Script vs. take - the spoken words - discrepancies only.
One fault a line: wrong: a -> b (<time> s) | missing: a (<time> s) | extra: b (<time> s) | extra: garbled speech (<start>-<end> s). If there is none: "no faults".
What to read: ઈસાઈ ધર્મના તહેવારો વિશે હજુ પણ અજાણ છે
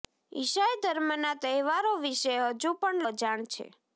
no faults